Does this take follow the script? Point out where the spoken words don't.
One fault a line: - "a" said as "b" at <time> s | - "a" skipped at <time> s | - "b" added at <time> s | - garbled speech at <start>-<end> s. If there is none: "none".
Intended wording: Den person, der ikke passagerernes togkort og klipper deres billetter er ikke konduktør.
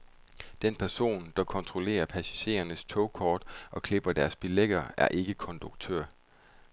- "ikke" said as "kontrollerer" at 1.4 s